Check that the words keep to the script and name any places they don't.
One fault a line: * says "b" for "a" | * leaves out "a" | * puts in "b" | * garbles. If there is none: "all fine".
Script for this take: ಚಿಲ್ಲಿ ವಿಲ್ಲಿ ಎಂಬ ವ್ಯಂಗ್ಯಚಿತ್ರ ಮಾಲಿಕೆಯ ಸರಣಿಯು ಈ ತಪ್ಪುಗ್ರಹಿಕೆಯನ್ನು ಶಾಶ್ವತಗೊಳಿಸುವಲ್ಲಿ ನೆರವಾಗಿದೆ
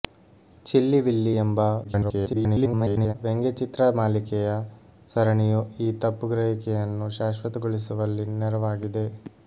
* garbles